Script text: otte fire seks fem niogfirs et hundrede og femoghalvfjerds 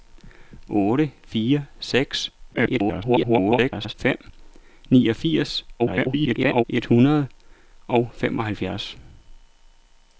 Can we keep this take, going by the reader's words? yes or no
no